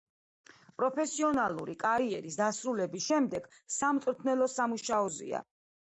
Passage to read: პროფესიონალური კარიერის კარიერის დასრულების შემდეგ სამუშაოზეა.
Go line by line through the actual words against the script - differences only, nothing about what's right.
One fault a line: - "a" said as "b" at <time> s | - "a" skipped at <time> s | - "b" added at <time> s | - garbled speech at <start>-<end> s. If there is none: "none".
- "კარიერის" skipped at 2.4 s
- "სამწვრთნელო" added at 3.8 s